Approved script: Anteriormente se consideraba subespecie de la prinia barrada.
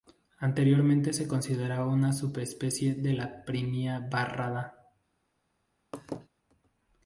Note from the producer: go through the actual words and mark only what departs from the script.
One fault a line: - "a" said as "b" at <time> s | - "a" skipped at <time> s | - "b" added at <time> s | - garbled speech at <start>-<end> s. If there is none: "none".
- "una" added at 1.9 s